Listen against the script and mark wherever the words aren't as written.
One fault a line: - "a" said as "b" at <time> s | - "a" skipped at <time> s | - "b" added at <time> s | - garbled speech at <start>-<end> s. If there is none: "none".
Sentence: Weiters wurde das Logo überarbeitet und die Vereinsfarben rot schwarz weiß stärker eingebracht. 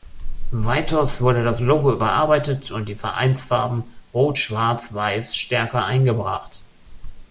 none